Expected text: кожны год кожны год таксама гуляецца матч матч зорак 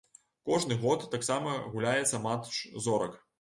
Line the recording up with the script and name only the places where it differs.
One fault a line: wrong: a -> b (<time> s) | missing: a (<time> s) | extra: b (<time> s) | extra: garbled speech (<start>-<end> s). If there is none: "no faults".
missing: кожны год (1.1 s)
missing: матч (2.6 s)